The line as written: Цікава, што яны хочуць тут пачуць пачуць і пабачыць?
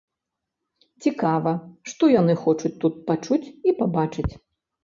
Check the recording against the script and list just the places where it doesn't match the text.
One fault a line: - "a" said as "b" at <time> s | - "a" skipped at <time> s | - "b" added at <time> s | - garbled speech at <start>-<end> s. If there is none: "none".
- "пачуць" skipped at 3.4 s